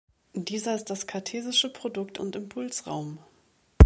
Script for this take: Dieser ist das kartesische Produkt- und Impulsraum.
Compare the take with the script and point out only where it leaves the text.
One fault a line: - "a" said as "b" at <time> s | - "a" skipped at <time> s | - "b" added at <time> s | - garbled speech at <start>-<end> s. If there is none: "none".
none